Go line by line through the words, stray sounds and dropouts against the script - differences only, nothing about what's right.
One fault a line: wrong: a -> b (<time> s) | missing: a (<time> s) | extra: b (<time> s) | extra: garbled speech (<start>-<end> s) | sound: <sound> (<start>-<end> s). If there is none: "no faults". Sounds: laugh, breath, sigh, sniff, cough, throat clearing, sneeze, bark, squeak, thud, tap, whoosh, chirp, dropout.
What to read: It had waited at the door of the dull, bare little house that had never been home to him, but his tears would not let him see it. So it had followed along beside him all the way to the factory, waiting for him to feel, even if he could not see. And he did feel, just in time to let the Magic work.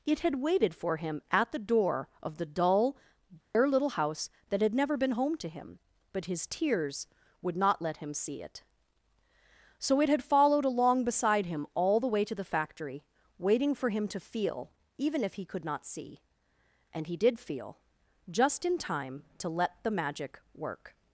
extra: for him (0.7 s)
sound: dropout (3.4-3.5 s)